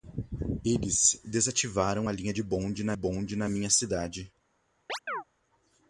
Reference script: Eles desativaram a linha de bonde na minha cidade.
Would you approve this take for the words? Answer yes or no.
no